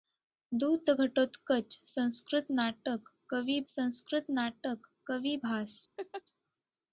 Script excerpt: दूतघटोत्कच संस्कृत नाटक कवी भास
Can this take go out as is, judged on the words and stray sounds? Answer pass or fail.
fail